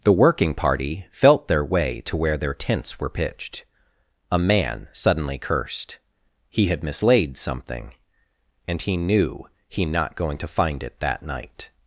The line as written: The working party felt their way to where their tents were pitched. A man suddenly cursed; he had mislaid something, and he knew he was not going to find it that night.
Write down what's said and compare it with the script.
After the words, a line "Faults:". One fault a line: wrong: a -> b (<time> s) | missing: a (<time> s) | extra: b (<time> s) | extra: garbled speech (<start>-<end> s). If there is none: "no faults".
The working party felt their way to where their tents were pitched. A man suddenly cursed; he had mislaid something, and he knew he not going to find it that night.
Faults:
missing: was (9.8 s)